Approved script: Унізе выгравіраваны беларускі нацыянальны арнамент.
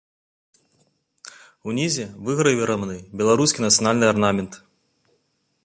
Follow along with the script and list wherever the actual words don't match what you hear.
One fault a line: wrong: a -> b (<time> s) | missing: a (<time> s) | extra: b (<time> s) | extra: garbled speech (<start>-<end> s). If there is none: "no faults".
no faults